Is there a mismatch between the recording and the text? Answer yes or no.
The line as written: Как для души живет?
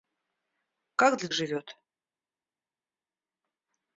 yes